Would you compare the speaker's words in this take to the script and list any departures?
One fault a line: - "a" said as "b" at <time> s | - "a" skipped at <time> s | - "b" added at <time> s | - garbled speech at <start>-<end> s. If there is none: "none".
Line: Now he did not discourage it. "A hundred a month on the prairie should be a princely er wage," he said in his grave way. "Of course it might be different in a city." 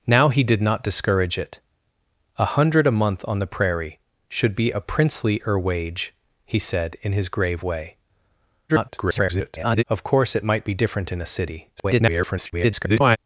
- garbled speech at 8.7-9.8 s
- garbled speech at 11.8-13.2 s